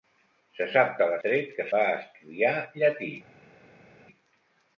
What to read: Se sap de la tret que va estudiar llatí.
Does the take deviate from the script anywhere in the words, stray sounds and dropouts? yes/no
no